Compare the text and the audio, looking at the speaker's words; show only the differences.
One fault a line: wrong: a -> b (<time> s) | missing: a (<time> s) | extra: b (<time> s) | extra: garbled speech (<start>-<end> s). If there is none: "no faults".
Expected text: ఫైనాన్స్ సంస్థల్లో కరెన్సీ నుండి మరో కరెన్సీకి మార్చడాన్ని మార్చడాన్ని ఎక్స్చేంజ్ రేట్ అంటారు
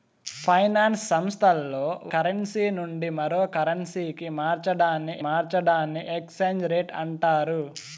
no faults